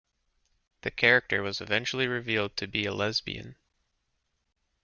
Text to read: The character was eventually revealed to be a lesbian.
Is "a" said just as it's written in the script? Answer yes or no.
yes